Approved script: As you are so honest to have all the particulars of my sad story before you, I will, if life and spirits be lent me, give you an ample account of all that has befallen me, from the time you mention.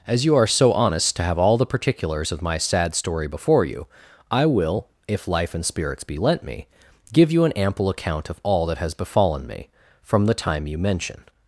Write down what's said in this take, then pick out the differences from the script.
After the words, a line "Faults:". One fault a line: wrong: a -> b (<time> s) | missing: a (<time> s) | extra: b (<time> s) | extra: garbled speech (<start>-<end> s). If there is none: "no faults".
As you are so honest to have all the particulars of my sad story before you, I will, if life and spirits be lent me, give you an ample account of all that has befallen me, from the time you mention.
Faults:
no faults